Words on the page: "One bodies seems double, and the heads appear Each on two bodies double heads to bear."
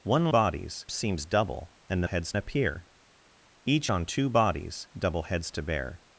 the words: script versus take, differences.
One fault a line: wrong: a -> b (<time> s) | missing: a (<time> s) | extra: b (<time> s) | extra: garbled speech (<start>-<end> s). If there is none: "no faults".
no faults